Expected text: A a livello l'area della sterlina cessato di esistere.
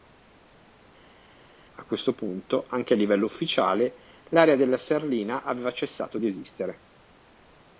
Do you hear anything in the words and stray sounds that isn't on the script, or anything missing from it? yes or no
yes